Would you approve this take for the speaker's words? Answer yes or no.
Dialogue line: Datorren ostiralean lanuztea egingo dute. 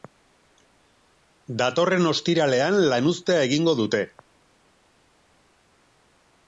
yes